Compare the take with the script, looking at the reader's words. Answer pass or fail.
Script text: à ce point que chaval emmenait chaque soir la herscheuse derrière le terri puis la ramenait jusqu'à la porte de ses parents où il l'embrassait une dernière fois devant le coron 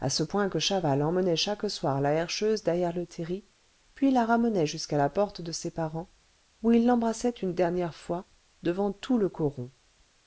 fail